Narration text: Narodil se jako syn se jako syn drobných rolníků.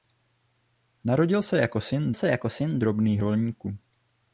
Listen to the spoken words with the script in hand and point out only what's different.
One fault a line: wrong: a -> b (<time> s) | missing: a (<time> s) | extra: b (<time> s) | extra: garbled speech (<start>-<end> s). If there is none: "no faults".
no faults